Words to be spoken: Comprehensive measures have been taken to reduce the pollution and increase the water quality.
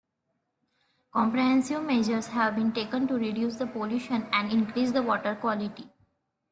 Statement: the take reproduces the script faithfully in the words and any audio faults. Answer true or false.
true